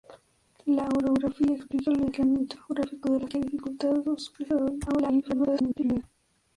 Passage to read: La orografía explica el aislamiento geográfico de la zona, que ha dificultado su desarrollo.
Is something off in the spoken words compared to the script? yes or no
yes